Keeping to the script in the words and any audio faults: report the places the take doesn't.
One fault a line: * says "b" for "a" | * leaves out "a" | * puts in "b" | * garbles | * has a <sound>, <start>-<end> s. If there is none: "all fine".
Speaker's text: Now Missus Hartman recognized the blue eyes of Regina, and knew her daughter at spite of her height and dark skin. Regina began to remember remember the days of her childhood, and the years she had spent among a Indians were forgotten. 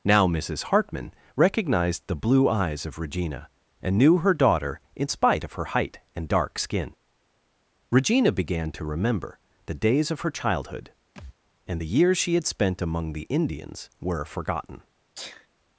* says "in" for "at"
* leaves out "remember"
* has a thud, 11.2-11.4 s
* says "the" for "a"
* has a sneeze, 15.1-15.5 s